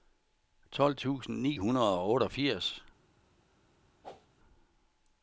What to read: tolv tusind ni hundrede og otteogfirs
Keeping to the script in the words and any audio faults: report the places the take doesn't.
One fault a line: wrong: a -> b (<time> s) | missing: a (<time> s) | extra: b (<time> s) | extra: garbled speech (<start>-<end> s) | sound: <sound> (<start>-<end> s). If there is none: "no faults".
sound: whoosh (4.0-4.3 s)